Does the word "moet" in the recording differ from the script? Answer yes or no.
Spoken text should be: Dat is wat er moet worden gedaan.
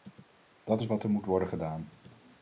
no